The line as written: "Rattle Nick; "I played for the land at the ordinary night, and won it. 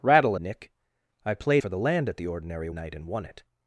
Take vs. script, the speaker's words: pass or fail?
pass